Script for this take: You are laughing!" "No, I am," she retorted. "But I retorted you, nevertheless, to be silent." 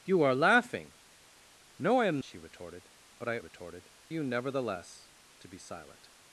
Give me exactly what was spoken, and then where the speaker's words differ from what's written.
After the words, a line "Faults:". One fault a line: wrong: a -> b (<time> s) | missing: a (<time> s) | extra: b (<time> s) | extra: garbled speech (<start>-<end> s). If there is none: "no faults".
You are laughing!" "No, I am," she retorted. "But I retorted you, nevertheless, to be silent."
Faults:
no faults